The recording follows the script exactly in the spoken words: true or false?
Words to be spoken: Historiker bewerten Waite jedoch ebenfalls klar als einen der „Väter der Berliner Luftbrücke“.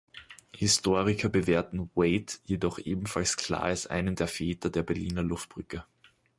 true